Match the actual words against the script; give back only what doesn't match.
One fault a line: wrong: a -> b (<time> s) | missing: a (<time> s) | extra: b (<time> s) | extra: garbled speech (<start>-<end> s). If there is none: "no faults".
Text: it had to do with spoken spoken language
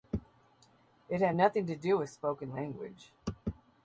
extra: nothing (1.3 s)
missing: spoken (2.5 s)